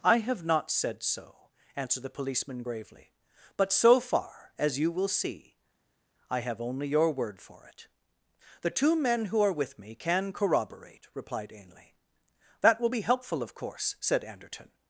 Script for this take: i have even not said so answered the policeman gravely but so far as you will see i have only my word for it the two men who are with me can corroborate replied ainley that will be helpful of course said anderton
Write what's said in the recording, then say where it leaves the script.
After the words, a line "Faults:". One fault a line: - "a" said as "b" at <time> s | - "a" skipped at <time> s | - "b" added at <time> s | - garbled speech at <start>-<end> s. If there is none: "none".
i have not said so answered the policeman gravely but so far as you will see i have only your word for it the two men who are with me can corroborate replied ainley that will be helpful of course said anderton
Faults:
- "even" skipped at 0.4 s
- "my" said as "your" at 6.9 s